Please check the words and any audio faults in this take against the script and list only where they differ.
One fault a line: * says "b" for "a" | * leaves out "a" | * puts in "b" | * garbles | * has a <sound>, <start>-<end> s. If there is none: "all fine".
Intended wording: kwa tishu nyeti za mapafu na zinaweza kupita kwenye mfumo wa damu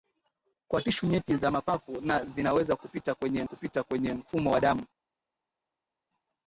* puts in "kupita kwenye"